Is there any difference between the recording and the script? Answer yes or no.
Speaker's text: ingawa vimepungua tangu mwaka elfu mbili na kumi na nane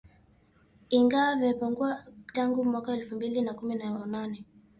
no